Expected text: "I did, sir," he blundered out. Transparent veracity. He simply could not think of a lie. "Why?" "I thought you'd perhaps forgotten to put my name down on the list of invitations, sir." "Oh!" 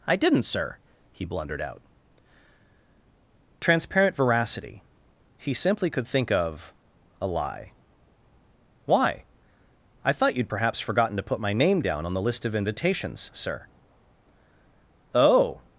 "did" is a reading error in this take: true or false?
true